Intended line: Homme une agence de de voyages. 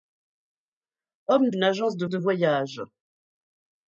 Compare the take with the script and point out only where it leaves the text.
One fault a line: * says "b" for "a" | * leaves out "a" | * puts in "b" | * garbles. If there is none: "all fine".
all fine